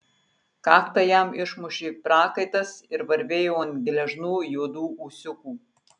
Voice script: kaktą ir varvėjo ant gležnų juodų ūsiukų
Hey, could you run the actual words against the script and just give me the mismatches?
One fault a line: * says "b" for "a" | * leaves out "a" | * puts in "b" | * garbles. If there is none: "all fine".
* puts in "jam išmušė prakaitas"